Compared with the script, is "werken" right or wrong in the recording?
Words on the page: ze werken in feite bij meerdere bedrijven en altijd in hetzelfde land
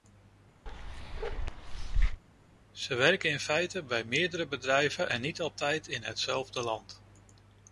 right